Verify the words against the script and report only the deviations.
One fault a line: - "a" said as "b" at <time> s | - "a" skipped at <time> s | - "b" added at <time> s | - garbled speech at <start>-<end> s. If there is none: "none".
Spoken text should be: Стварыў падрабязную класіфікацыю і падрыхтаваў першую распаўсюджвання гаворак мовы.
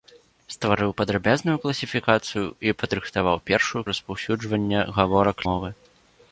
none